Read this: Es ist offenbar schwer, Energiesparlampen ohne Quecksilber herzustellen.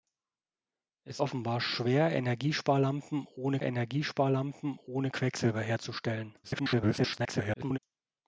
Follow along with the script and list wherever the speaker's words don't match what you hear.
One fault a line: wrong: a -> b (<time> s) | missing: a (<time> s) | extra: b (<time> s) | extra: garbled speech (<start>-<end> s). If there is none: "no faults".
missing: ist (1.2 s)
extra: Energiesparlampen ohne (3.6 s)
extra: garbled speech (6.4-7.8 s)